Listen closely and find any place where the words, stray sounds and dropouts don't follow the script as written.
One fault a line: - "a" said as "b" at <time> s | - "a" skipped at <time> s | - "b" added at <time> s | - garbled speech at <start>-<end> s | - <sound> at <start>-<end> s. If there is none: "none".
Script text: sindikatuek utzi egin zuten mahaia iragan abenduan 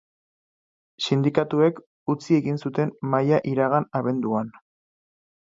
none